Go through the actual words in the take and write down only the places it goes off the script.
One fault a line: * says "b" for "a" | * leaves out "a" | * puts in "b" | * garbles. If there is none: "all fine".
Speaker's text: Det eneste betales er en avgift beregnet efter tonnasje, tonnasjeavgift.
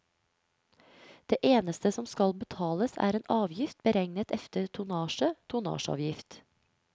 * puts in "som skal"